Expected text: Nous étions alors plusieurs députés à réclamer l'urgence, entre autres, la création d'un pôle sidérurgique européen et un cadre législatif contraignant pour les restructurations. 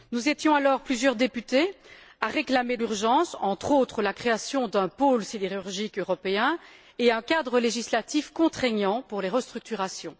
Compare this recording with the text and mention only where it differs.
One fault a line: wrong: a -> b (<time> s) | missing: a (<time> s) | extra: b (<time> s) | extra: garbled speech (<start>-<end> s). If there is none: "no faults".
no faults